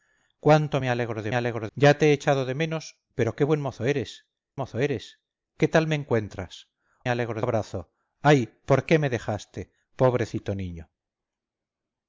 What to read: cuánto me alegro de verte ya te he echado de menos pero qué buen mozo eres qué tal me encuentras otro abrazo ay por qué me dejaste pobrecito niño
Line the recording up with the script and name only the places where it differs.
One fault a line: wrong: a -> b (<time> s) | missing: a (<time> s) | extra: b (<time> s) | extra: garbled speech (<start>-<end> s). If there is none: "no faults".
wrong: verte -> alegro (1.3 s)
extra: mozo eres (4.5 s)
wrong: otro -> alegro (7.1 s)